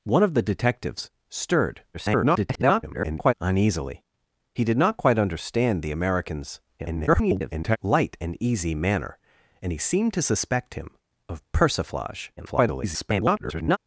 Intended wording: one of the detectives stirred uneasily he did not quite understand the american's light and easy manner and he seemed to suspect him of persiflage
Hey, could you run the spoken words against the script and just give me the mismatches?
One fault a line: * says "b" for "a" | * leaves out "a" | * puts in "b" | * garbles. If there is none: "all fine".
* garbles
* garbles
* garbles